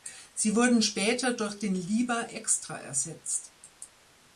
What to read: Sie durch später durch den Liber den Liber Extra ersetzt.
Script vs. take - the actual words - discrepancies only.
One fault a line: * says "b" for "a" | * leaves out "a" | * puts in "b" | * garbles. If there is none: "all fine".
* says "wurden" for "durch"
* leaves out "den Liber"